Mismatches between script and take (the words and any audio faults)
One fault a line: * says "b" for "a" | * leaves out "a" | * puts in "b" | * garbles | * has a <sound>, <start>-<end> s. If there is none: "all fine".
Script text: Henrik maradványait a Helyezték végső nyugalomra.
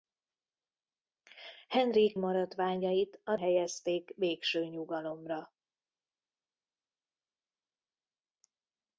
all fine